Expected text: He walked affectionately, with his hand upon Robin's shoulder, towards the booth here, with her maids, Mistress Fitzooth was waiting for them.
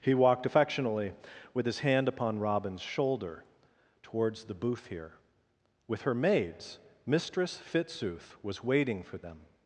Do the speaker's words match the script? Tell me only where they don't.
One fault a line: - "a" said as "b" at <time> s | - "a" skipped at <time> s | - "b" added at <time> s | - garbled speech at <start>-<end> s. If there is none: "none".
none